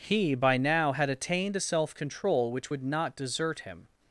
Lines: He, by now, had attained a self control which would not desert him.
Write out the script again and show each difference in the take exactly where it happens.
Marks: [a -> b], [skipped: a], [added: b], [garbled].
He, by now, had attained a self control which would not desert him.